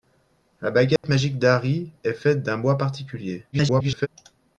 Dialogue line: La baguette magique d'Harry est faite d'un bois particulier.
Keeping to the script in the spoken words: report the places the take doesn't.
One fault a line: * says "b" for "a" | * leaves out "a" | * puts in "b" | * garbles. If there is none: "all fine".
* garbles